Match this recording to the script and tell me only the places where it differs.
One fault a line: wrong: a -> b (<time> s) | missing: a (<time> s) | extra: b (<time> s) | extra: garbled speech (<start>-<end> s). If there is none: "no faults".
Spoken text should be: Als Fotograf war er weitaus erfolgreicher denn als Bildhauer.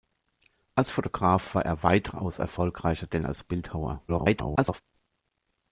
extra: garbled speech (4.1-4.8 s)